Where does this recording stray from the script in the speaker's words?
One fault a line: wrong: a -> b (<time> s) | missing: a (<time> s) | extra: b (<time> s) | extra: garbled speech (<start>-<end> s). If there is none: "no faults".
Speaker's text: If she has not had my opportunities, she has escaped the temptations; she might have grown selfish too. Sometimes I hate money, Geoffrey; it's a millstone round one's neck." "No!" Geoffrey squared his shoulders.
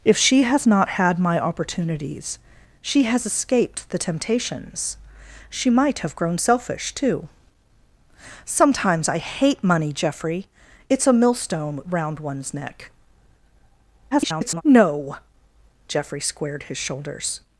extra: garbled speech (14.1-14.6 s)